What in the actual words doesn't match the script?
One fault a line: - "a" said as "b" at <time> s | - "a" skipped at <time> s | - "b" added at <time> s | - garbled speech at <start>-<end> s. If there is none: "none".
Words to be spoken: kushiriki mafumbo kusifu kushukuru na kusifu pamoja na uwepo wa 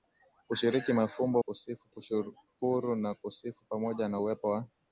none